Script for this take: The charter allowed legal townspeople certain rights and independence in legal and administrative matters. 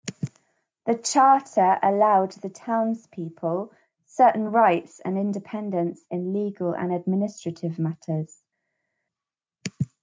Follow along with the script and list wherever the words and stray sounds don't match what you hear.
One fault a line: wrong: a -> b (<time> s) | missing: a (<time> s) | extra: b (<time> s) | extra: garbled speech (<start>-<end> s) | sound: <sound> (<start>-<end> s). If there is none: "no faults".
wrong: legal -> the (2.3 s)